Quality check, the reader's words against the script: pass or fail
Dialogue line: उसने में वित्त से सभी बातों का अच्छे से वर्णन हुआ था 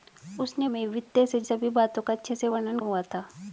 pass